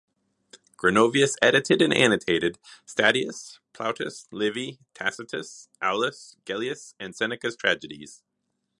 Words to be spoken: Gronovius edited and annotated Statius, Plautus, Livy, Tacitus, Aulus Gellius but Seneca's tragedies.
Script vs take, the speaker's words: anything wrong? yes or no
yes